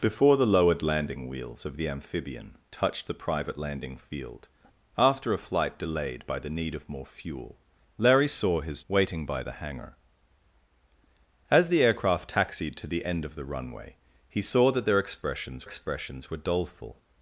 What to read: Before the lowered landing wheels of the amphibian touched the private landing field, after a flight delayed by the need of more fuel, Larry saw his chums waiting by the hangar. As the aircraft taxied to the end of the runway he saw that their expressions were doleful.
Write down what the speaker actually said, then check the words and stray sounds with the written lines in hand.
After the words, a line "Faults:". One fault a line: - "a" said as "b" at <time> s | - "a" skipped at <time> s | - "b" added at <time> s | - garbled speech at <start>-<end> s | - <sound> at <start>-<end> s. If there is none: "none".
Before the lowered landing wheels of the amphibian touched the private landing field, after a flight delayed by the need of more fuel, Larry saw his waiting by the hangar. As the aircraft taxied to the end of the runway he saw that their expressions expressions were doleful.
Faults:
- "chums" skipped at 8.8 s
- "expressions" added at 15.6 s